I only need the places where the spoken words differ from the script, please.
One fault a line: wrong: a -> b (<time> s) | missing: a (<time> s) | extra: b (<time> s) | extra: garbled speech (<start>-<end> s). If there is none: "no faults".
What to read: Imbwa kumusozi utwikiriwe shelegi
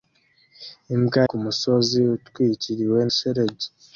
no faults